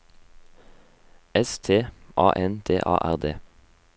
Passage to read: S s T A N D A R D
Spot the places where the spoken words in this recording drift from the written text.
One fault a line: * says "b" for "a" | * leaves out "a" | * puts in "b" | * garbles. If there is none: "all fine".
* leaves out "s"